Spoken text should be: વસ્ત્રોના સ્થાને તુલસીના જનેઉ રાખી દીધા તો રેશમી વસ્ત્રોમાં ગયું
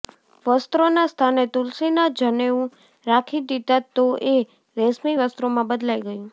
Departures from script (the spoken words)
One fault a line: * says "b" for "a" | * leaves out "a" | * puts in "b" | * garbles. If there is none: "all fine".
* puts in "એ"
* puts in "બદલાઈ"